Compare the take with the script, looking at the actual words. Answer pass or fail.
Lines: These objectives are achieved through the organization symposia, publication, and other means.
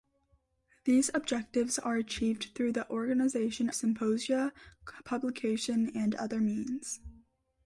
pass